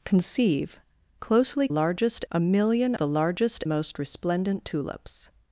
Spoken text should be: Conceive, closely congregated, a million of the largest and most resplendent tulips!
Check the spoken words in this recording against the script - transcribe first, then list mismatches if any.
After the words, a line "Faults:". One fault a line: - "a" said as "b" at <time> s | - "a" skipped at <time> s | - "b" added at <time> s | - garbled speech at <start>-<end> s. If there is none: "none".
Conceive, closely largest, a million the largest most resplendent tulips!
Faults:
- "congregated" said as "largest" at 1.7 s
- "of" skipped at 2.9 s
- "and" skipped at 3.6 s